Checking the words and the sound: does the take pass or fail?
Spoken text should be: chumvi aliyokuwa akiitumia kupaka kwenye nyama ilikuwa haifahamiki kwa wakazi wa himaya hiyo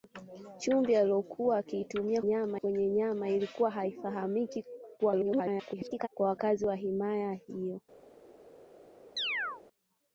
fail